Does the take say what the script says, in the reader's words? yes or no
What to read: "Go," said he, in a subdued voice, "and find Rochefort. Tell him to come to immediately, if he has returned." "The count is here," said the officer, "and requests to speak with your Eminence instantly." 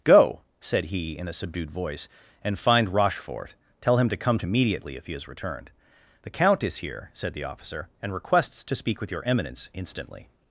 yes